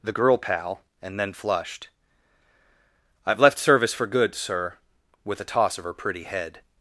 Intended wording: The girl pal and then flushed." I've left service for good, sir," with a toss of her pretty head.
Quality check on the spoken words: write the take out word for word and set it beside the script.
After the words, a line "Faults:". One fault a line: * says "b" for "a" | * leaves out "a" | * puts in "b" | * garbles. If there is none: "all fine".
The girl pal and then flushed." I've left service for good, sir," with a toss of her pretty head.
Faults:
all fine